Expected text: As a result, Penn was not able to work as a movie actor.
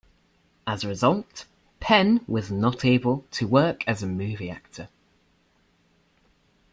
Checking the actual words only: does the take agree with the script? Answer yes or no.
yes